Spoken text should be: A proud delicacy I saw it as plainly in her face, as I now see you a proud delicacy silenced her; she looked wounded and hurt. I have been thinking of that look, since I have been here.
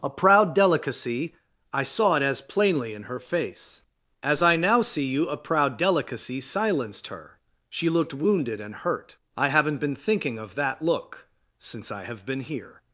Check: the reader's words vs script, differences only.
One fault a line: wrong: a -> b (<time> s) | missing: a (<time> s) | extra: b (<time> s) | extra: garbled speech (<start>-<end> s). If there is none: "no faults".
wrong: have -> haven't (9.5 s)